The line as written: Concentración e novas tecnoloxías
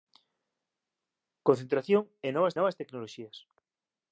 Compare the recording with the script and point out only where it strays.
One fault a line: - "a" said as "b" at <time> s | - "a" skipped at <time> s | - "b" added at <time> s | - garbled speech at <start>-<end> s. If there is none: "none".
- "novas" added at 2.6 s